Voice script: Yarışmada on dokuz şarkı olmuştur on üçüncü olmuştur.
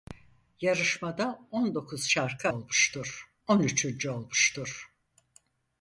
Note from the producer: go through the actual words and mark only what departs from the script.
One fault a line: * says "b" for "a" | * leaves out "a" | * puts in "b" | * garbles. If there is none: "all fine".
all fine